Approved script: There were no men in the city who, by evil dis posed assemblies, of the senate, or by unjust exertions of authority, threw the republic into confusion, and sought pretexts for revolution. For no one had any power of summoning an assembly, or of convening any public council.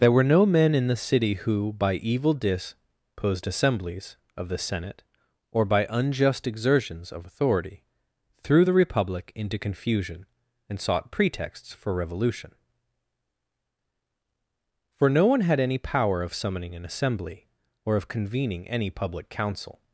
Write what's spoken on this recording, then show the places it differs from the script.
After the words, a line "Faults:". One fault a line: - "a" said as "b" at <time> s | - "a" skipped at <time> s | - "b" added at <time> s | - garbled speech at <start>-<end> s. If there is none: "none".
There were no men in the city who, by evil dis posed assemblies, of the senate, or by unjust exertions of authority, threw the republic into confusion, and sought pretexts for revolution. For no one had any power of summoning an assembly, or of convening any public council.
Faults:
none